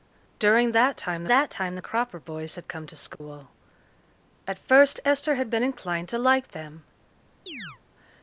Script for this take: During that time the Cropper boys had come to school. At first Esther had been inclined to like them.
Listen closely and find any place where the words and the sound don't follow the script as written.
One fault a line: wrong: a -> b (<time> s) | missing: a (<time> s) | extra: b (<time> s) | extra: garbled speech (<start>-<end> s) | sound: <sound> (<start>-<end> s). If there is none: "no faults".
extra: that time (1.3 s)
sound: dropout (3.2-3.2 s)
sound: chirp (7.5-7.8 s)